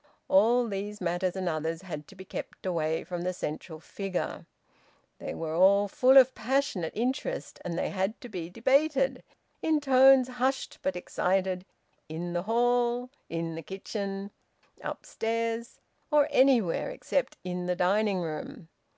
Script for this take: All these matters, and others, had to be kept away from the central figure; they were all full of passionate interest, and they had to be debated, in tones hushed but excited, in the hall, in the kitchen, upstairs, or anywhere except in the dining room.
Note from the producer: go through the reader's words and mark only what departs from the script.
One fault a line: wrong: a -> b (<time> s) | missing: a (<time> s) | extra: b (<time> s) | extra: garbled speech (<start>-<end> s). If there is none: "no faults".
no faults